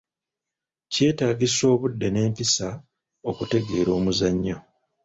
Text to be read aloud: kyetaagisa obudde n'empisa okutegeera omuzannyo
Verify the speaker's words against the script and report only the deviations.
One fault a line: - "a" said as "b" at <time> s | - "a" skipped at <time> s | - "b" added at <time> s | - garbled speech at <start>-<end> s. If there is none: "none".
none